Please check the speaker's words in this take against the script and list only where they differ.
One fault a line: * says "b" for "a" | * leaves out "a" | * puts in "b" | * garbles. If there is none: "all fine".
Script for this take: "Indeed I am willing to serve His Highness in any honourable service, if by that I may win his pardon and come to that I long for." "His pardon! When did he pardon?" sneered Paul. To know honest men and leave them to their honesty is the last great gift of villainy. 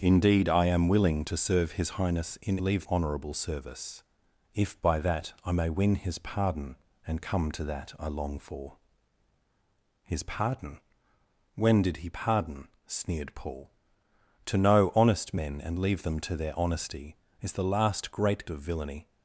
* says "leave" for "any"
* leaves out "gift"